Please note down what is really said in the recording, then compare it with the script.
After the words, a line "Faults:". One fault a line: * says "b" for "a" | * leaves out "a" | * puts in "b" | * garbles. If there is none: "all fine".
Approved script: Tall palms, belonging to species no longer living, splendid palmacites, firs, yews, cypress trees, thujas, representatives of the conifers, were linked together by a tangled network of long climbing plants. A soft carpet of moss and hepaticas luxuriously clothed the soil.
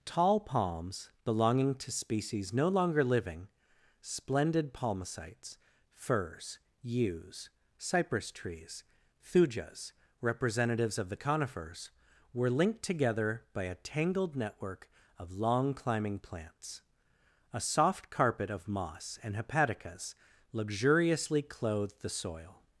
Tall palms, belonging to species no longer living, splendid palmacites, firs, yews, cypress trees, thujas, representatives of the conifers, were linked together by a tangled network of long climbing plants. A soft carpet of moss and hepaticas luxuriously clothed the soil.
Faults:
all fine